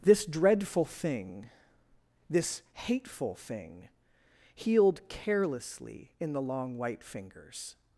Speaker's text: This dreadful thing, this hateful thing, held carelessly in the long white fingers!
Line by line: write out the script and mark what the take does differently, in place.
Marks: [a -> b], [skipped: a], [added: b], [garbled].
This dreadful thing, this hateful thing, [held -> healed] carelessly in the long white fingers!